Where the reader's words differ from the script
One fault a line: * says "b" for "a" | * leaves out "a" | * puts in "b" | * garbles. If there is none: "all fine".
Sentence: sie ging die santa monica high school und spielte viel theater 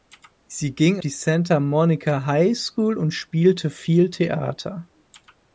all fine